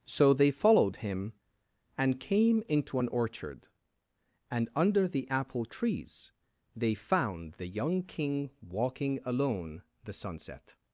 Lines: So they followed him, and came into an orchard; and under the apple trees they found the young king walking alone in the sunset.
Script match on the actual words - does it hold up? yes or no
no